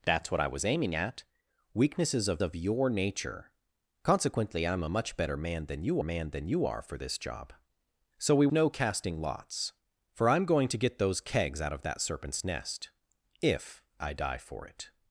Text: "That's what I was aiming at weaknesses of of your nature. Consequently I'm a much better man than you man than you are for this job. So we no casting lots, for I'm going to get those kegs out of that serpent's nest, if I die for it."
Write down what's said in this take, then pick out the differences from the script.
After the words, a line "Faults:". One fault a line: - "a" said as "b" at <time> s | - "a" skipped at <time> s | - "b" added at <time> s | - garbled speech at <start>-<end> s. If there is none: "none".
"That's what I was aiming at weaknesses of of your nature. Consequently I'm a much better man than you man than you are for this job. So we no casting lots, for I'm going to get those kegs out of that serpent's nest, if I die for it."
Faults:
none